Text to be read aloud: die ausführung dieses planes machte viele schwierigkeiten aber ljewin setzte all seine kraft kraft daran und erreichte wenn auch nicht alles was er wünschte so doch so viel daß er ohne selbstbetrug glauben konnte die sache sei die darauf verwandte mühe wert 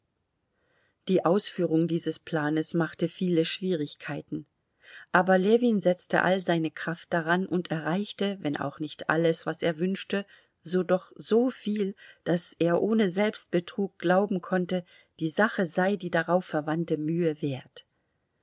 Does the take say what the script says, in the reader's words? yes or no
no